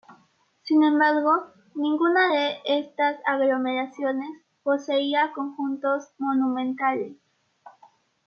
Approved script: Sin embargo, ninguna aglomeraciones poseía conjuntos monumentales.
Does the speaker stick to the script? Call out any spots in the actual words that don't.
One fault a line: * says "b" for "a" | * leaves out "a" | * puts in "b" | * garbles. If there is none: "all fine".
* puts in "de estas"